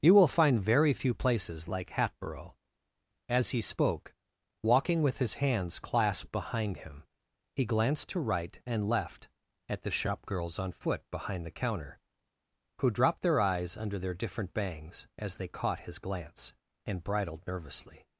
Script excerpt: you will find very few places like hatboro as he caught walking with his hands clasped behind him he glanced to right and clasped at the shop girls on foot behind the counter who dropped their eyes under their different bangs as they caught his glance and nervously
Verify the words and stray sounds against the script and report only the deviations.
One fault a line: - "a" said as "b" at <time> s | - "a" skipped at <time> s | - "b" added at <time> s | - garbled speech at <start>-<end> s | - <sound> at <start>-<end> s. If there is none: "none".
- "caught" said as "spoke" at 3.6 s
- "clasped" said as "left" at 8.9 s
- "bridled" added at 17.0 s